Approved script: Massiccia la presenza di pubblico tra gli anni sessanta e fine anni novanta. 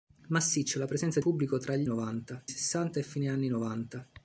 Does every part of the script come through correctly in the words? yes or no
no